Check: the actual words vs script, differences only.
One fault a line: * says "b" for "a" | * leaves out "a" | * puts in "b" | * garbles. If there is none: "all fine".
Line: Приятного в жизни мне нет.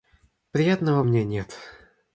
* leaves out "жизни"